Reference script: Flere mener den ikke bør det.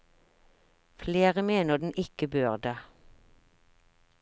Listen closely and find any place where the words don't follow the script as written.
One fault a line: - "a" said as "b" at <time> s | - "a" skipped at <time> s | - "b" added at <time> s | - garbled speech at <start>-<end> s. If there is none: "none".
none